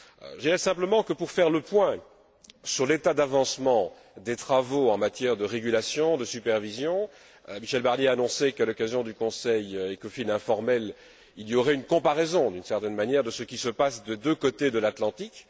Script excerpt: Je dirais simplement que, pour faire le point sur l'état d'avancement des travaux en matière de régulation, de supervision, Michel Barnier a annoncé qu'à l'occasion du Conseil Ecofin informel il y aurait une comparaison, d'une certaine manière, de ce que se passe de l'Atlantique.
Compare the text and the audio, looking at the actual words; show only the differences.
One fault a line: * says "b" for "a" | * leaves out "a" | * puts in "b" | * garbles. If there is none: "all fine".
* says "qui" for "que"
* puts in "des deux côtés"